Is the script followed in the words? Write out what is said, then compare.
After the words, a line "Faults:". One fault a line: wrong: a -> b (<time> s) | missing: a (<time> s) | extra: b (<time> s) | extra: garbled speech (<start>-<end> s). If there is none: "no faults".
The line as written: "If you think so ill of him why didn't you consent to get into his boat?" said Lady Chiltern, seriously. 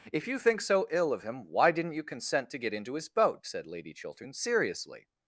"If you think so ill of him why didn't you consent to get into his boat?" said Lady Chiltern, seriously.
Faults:
no faults